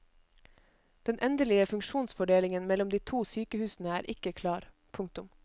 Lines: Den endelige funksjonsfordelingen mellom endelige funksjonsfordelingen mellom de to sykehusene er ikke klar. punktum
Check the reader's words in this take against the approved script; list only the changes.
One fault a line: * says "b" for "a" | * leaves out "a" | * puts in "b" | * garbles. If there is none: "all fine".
* leaves out "endelige funksjonsfordelingen mellom"